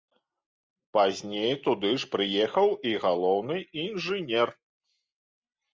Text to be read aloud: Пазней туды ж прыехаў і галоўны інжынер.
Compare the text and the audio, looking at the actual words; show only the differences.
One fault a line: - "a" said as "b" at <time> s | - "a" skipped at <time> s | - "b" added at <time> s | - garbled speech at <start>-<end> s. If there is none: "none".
none